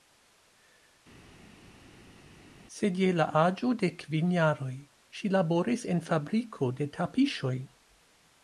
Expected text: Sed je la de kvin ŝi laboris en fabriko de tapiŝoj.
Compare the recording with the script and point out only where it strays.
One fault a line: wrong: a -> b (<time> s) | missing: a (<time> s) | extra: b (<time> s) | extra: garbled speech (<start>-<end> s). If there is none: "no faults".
extra: aĝo (3.4 s)
extra: jaroj (4.4 s)